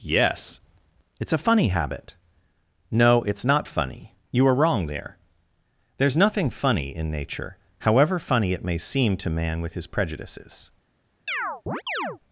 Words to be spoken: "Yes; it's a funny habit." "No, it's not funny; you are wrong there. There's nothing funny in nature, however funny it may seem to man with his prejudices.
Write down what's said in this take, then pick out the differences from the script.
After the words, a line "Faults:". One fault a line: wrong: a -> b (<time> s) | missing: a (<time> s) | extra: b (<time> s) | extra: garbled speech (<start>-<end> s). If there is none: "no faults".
"Yes; it's a funny habit." "No, it's not funny; you are wrong there. There's nothing funny in nature, however funny it may seem to man with his prejudices.
Faults:
no faults